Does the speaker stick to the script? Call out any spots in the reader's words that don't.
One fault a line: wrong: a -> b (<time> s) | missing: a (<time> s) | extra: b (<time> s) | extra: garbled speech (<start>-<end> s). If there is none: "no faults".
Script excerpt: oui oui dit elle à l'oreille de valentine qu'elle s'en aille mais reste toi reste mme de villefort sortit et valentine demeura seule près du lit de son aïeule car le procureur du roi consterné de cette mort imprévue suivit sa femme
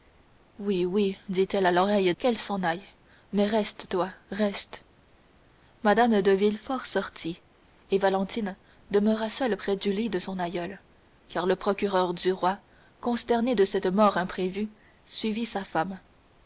missing: de valentine (2.1 s)